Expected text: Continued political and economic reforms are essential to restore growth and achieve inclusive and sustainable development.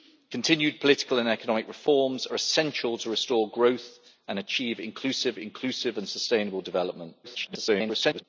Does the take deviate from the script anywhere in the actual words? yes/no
yes